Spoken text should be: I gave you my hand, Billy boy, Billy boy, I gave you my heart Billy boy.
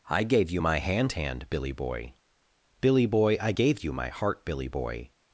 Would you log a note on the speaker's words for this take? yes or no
yes